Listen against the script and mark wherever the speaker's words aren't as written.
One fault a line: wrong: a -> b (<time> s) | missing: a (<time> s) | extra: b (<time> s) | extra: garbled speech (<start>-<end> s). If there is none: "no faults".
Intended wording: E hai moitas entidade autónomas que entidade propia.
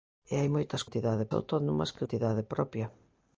no faults